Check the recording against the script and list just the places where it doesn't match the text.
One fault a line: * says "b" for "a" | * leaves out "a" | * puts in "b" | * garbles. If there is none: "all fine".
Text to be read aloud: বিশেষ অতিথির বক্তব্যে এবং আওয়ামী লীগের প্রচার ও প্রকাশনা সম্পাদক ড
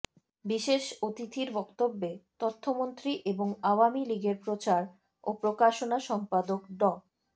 * puts in "তথ্যমন্ত্রী"